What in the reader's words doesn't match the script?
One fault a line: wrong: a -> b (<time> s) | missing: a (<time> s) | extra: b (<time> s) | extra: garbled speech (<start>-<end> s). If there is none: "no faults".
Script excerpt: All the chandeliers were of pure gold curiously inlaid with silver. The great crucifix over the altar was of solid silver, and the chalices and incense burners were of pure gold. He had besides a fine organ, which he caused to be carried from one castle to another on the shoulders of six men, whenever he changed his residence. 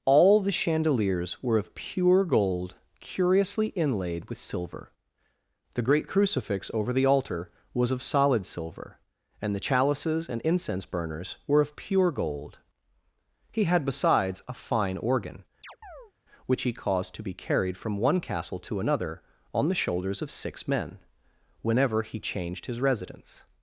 no faults